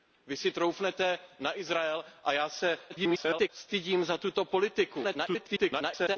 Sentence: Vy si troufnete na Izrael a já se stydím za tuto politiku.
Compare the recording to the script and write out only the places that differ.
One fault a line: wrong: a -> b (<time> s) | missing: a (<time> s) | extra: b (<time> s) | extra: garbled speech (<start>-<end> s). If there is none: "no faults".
extra: garbled speech (2.9-3.5 s)
extra: garbled speech (5.0-6.2 s)